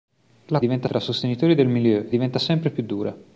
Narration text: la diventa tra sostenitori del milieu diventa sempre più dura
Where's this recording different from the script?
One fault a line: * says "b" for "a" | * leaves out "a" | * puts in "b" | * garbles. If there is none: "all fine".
all fine